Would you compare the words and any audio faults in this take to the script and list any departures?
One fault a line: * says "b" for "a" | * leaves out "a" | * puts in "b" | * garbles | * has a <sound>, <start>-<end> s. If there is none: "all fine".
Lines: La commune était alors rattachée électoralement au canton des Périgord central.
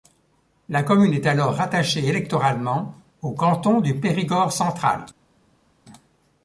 * says "est" for "était"
* says "du" for "des"